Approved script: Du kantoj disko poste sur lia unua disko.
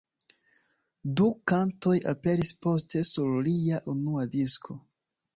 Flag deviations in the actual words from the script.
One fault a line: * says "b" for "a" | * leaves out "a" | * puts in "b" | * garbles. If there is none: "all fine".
* says "aperis" for "disko"